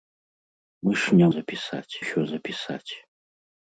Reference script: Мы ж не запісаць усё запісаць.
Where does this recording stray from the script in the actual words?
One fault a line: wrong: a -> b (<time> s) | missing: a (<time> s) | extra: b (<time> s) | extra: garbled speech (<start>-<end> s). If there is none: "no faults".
no faults